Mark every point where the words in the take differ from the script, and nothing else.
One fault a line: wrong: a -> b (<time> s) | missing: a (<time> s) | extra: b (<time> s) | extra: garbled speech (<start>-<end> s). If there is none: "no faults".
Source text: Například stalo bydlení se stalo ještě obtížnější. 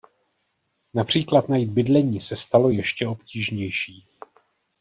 wrong: stalo -> najít (1.5 s)